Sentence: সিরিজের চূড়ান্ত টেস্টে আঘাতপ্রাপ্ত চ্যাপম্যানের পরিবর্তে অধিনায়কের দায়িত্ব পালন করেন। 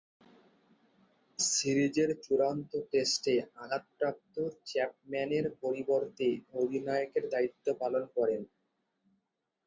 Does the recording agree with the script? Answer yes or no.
yes